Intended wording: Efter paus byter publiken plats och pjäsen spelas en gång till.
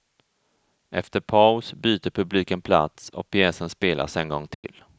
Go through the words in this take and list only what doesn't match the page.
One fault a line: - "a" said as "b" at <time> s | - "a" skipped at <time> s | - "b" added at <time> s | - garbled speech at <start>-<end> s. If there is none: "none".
none